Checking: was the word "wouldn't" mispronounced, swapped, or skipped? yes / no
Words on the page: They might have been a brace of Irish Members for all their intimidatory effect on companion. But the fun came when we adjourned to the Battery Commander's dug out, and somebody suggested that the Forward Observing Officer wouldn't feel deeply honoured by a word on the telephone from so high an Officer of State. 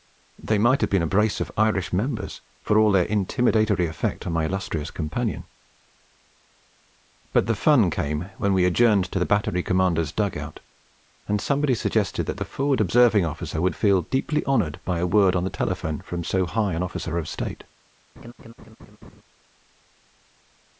yes